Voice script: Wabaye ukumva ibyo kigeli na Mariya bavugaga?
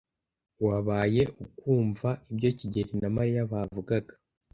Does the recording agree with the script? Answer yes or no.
yes